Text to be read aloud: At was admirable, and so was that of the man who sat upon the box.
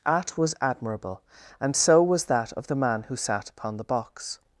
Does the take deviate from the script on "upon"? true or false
false